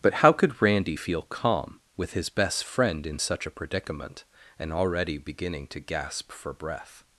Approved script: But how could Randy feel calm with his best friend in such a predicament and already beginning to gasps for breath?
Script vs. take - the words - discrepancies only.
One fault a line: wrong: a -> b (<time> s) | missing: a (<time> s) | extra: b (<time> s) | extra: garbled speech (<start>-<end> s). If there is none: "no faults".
wrong: gasps -> gasp (5.8 s)